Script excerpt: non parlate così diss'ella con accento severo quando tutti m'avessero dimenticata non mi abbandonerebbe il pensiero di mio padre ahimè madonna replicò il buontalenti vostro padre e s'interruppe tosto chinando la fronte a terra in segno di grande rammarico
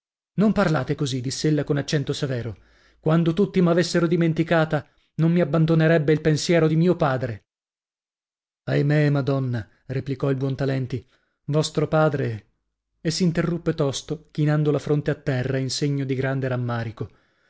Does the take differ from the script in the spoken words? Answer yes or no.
no